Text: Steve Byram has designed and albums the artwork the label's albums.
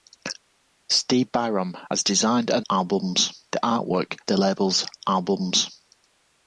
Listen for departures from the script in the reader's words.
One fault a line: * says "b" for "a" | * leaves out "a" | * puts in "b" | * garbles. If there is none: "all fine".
all fine